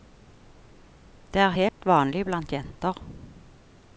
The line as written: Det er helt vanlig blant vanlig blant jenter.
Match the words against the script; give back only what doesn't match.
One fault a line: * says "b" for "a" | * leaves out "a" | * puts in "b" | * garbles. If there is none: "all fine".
* leaves out "vanlig blant"